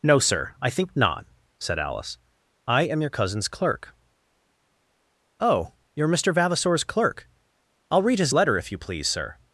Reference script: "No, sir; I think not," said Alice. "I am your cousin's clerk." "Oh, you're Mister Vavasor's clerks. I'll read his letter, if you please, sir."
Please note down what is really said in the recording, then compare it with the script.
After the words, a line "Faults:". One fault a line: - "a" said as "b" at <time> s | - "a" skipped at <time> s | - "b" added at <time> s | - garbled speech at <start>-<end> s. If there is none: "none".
"No, sir; I think not," said Alice. "I am your cousin's clerk." "Oh, you're Mister Vavasor's clerk. I'll read his letter, if you please, sir."
Faults:
- "clerks" said as "clerk" at 6.8 s